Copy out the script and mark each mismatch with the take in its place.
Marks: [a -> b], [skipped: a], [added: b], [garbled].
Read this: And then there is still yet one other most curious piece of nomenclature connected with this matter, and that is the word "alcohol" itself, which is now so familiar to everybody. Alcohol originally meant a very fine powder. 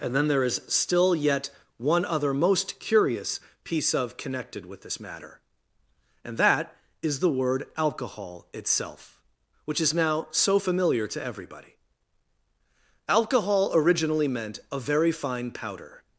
And then there is still yet one other most curious piece of [skipped: nomenclature] connected with this matter, and that is the word "alcohol" itself, which is now so familiar to everybody. Alcohol originally meant a very fine powder.